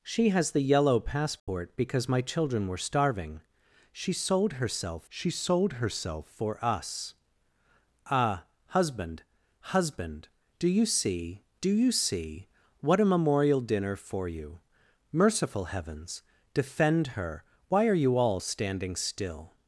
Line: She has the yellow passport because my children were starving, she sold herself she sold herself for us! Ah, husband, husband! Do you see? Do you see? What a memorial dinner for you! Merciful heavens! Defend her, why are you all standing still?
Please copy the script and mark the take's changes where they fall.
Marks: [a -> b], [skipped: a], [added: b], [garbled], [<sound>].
She has the yellow passport [dropout] because my children were starving, she sold herself she sold herself for us! Ah, husband, husband! Do you see? Do you see? What a memorial dinner for you! Merciful heavens! Defend her, why are you all standing still?